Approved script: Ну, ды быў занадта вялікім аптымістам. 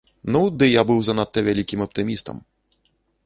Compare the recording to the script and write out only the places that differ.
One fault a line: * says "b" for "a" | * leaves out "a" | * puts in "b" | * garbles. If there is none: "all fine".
* puts in "я"